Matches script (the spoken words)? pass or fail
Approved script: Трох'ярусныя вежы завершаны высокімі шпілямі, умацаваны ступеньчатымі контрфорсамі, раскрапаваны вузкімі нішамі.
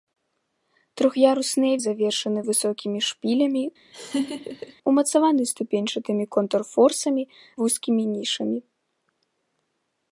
fail